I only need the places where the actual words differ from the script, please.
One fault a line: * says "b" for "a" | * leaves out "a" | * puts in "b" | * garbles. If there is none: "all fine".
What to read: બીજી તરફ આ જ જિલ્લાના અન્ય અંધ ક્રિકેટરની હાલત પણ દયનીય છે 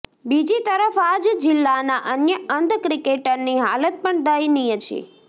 all fine